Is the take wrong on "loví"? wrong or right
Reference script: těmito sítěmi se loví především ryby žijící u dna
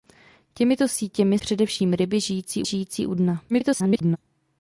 wrong